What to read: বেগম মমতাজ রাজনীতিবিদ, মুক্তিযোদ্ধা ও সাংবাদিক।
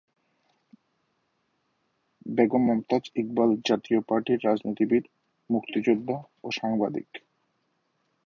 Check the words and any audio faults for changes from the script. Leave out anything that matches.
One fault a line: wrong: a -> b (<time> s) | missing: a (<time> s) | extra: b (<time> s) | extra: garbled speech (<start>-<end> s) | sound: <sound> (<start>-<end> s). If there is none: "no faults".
extra: ইকবাল জাতীয় পার্টির (3.1 s)